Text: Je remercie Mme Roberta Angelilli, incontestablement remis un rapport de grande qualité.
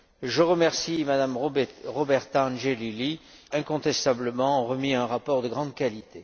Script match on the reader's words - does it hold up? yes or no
yes